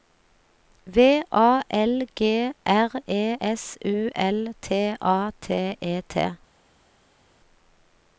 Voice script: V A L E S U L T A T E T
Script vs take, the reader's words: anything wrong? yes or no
yes